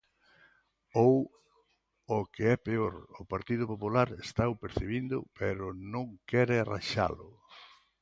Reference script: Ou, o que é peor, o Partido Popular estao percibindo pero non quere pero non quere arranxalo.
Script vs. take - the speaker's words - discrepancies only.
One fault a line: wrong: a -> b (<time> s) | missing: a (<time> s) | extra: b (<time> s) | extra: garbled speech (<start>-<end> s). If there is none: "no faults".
missing: pero non quere (6.5 s)